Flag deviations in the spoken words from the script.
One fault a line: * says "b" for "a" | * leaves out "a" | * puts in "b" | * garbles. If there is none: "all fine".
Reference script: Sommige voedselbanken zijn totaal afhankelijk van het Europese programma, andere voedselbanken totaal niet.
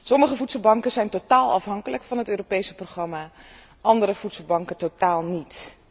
all fine